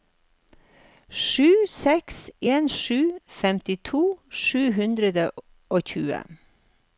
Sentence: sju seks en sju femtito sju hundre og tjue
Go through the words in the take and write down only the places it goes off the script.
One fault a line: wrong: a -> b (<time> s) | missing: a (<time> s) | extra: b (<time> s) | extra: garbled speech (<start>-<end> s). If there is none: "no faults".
no faults